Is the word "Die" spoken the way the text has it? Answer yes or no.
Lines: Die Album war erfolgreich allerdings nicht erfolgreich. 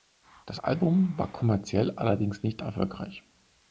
no